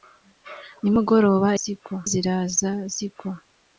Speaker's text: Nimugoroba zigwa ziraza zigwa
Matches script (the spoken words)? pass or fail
pass